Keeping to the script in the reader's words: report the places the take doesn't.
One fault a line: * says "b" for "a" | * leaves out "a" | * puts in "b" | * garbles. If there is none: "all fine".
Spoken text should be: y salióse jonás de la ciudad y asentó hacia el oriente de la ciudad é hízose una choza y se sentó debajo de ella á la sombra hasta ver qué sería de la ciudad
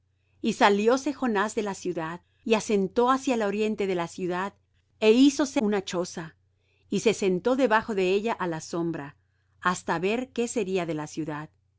all fine